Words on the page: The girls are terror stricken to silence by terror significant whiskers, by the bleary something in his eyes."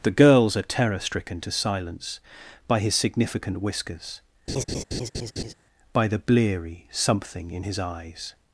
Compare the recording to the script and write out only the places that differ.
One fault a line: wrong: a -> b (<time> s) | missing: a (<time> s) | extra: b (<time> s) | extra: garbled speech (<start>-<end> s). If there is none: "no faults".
wrong: terror -> his (2.8 s)